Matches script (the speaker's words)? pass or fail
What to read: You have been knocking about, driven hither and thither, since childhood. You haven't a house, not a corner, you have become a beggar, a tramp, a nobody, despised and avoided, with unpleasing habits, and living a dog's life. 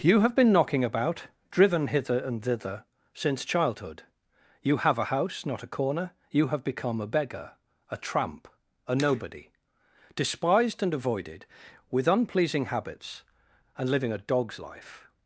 fail